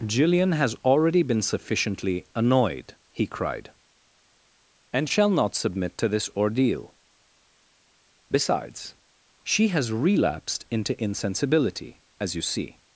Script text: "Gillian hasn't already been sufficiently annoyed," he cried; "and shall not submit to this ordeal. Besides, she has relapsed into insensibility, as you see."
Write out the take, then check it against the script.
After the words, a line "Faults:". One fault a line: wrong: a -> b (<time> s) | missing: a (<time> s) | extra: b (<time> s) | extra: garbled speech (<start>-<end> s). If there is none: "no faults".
"Gillian has already been sufficiently annoyed," he cried; "and shall not submit to this ordeal. Besides, she has relapsed into insensibility, as you see."
Faults:
wrong: hasn't -> has (0.5 s)